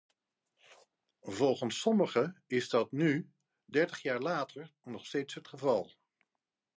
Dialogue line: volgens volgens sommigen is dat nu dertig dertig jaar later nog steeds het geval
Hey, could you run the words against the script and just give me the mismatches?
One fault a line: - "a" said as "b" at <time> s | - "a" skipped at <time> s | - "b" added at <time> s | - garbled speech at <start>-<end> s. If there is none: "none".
- "volgens" skipped at 1.8 s
- "dertig" skipped at 4.0 s